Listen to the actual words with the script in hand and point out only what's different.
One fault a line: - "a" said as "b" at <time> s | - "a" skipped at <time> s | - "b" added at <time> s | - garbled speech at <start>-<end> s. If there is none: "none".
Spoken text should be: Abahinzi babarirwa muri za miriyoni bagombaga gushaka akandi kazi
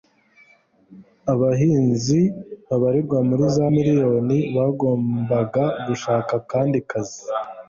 none